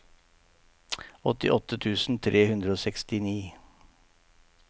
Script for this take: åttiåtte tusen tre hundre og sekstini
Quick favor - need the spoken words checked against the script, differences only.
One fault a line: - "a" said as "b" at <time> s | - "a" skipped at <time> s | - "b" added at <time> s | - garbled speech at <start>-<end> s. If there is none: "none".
none